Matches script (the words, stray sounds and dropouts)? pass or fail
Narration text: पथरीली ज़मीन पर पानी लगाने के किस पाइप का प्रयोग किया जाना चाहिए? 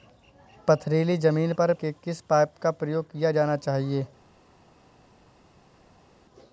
fail